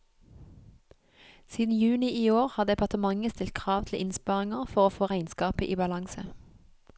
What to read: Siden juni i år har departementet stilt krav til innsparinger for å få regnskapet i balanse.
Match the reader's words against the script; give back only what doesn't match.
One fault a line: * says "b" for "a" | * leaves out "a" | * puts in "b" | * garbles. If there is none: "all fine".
all fine